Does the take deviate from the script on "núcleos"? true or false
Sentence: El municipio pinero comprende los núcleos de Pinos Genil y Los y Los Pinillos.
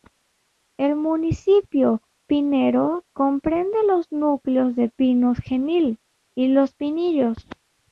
false